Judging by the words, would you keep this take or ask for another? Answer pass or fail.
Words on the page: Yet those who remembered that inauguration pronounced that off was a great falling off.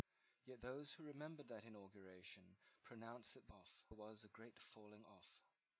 pass